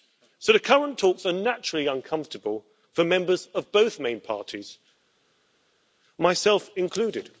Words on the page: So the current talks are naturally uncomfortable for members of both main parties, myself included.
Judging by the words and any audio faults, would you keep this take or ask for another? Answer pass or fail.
pass